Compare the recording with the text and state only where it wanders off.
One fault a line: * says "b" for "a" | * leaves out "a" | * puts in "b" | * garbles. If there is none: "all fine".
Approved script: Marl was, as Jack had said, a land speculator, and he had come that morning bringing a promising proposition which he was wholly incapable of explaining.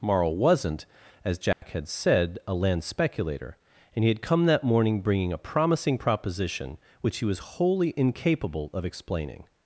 * says "wasn't" for "was"